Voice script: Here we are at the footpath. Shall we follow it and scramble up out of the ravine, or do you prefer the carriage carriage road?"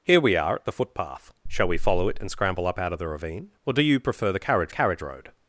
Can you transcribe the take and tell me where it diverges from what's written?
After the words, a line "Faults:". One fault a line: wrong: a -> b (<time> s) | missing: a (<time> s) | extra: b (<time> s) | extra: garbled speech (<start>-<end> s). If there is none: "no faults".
Here we are at the footpath. Shall we follow it and scramble up out of the ravine, or do you prefer the carriage carriage road?"
Faults:
no faults